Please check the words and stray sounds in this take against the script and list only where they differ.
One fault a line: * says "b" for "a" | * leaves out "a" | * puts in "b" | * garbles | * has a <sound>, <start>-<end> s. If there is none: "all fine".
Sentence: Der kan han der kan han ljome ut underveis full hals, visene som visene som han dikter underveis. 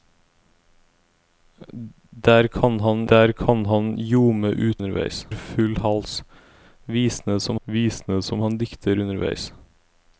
all fine